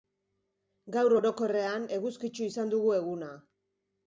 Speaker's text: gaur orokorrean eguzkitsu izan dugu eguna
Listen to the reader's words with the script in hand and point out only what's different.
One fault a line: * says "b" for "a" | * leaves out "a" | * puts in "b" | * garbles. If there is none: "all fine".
all fine